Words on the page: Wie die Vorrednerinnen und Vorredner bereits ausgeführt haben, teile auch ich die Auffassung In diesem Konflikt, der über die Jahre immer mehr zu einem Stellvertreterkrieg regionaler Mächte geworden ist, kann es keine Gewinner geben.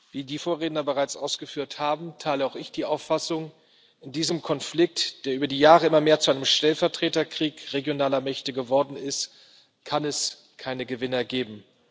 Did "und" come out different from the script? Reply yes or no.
yes